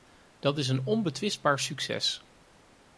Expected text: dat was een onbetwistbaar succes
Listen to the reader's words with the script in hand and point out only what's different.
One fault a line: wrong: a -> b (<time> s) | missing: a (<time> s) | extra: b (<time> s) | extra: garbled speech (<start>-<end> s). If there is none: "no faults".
wrong: was -> is (0.6 s)